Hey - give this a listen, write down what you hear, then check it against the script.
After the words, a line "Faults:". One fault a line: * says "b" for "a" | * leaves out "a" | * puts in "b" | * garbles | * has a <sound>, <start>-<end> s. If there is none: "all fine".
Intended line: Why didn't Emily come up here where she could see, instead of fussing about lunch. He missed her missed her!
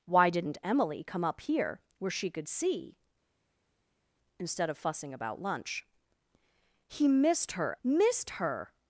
Why didn't Emily come up here where she could see, instead of fussing about lunch. He missed her missed her!
Faults:
all fine